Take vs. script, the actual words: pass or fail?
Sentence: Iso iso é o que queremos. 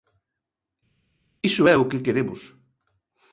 fail